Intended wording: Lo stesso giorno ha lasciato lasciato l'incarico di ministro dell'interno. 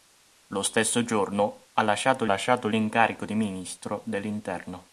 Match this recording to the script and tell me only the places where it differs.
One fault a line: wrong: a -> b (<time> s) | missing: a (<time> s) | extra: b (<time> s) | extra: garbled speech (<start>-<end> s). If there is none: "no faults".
no faults